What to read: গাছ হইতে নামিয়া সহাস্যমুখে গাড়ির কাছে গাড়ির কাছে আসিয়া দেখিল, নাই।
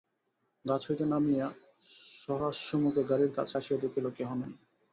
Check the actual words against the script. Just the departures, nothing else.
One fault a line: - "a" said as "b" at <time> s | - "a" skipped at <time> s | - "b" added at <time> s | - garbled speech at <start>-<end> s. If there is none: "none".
- "গাড়ির কাছে" skipped at 3.5 s
- "কেহ" added at 4.2 s